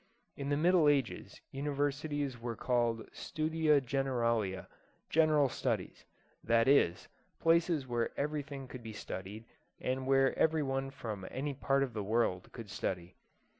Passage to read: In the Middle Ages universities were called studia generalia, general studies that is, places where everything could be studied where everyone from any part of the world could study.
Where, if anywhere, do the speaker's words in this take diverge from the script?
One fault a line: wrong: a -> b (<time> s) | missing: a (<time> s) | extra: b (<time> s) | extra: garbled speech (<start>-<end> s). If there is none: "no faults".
extra: and (9.8 s)